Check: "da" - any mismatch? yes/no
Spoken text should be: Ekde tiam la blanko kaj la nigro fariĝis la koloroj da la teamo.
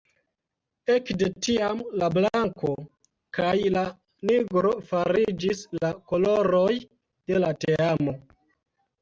yes